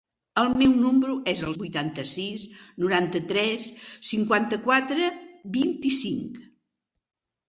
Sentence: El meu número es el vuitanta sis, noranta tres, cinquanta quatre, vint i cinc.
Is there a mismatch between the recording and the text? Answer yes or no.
no